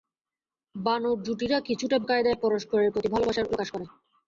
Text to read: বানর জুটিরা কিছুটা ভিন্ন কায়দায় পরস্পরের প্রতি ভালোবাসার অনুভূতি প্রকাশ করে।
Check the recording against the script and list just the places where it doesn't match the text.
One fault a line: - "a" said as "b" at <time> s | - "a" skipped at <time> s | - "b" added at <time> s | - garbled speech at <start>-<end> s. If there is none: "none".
- "ভিন্ন" skipped at 2.0 s
- "অনুভূতি" skipped at 3.5 s